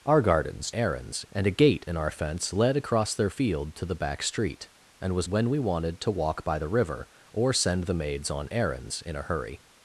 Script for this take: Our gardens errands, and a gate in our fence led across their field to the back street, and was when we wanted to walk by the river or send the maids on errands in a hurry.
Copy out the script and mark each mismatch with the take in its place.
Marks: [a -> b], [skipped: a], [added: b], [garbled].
Our gardens errands, and a gate in our fence led across their field to the back street, and was when we wanted to walk by the river or send the maids on errands in a hurry.